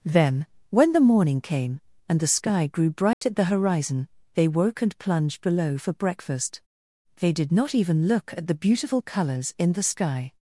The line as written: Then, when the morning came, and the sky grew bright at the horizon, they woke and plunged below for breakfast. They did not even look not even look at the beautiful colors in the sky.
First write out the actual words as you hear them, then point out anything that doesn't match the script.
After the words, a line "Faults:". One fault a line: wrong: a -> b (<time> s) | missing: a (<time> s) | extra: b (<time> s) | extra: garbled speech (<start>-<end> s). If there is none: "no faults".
Then, when the morning came, and the sky grew bright at the horizon, they woke and plunged below for breakfast. They did not even look at the beautiful colors in the sky.
Faults:
missing: not even look (8.3 s)